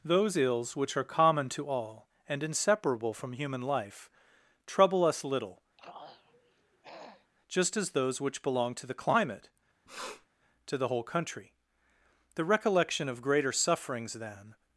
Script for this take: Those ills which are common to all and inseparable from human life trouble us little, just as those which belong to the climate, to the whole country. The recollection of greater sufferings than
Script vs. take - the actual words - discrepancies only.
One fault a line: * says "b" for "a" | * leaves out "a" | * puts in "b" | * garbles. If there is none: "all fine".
all fine